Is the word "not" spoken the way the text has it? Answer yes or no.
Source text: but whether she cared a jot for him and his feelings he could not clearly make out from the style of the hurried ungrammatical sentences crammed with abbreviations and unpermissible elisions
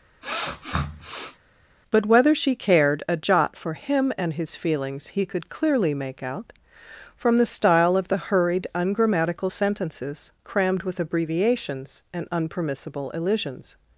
no